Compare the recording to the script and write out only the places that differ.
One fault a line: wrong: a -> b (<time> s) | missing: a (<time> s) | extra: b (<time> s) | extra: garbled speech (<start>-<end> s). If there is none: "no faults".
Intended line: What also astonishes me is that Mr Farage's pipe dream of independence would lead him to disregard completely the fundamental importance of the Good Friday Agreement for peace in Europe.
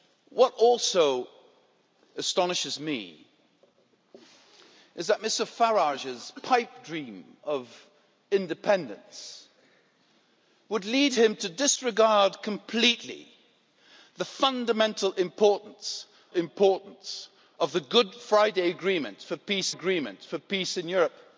extra: importance (16.3 s)
extra: Agreement for peace (19.7 s)